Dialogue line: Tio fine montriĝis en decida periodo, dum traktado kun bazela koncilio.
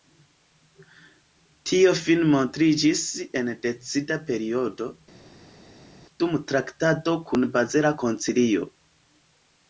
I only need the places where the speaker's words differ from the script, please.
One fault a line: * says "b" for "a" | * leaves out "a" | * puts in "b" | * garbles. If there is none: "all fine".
all fine